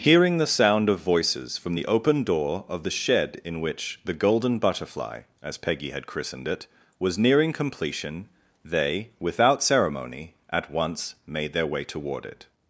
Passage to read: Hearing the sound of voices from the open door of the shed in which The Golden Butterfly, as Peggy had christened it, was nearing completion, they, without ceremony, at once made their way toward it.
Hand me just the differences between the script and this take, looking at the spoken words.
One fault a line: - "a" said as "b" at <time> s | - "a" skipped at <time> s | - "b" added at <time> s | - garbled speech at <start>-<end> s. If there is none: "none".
none